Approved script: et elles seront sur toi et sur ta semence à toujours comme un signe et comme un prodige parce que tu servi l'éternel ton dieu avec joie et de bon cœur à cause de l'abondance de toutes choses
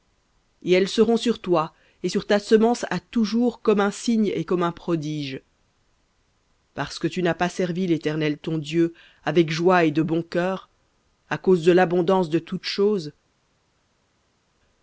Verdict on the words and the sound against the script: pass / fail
fail